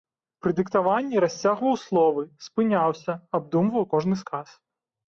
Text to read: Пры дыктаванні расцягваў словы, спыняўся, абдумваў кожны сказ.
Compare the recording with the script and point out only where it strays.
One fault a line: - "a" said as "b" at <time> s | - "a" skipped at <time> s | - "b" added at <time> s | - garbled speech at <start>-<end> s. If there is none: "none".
none